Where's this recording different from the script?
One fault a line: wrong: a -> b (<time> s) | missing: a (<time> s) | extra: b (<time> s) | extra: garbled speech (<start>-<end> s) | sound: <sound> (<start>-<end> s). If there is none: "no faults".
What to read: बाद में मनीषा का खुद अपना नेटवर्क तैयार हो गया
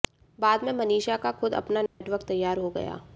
sound: dropout (1.9-2.0 s)